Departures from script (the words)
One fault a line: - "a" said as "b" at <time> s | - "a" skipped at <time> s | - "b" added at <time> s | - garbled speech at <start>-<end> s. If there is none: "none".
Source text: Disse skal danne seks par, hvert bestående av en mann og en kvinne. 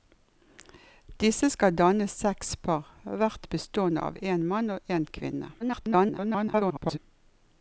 - garbled speech at 5.6-7.0 s